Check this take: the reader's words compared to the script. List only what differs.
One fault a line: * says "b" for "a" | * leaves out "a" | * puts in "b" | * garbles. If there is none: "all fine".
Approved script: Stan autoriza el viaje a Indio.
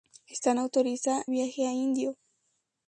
* leaves out "el"